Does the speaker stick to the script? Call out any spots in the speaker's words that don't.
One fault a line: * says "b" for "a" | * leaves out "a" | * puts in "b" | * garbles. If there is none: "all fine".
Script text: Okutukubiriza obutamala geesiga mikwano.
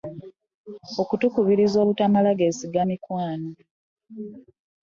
all fine